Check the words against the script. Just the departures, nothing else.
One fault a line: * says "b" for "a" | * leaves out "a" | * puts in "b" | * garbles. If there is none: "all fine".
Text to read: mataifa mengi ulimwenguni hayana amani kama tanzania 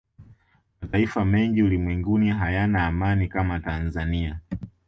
all fine